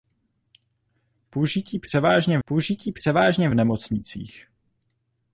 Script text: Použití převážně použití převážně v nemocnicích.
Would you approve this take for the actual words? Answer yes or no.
yes